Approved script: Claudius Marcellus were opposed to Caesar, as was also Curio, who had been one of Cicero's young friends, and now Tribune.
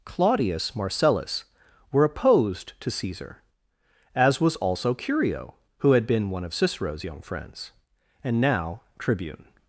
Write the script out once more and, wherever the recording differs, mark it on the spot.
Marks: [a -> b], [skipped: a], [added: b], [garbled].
Claudius Marcellus were opposed to Caesar, as was also Curio, who had been one of Cicero's young friends, and now Tribune.